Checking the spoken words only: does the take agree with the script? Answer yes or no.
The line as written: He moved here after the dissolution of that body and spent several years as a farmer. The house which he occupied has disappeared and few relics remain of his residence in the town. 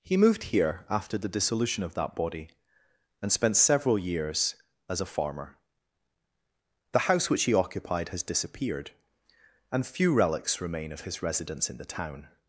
yes